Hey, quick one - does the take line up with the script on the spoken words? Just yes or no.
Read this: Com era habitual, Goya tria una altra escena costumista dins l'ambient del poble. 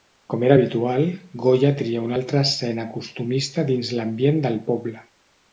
yes